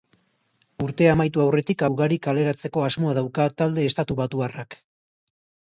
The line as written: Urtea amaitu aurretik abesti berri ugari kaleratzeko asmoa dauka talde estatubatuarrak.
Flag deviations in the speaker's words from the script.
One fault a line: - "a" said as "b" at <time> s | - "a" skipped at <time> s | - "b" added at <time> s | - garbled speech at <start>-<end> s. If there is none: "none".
- "abesti berri" skipped at 1.8 s